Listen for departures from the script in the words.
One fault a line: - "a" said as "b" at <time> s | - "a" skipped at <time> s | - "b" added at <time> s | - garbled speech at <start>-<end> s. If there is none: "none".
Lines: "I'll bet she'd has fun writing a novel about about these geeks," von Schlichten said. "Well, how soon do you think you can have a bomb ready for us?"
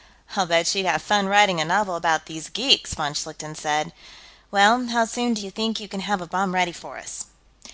- "has" said as "have" at 0.9 s
- "about" skipped at 2.2 s